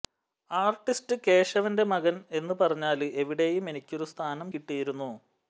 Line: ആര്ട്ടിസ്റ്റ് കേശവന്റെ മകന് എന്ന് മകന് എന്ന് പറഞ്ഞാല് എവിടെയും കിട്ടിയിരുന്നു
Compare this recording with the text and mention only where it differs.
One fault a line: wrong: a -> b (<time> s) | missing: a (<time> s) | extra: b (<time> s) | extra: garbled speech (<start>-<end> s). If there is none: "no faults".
wrong: മകന് എന്ന് പറഞ്ഞാല് എവിടെയും -> പറഞ്ഞാല് എവിടെയും എനിക്കൊരു സ്ഥാനം (2.6 s)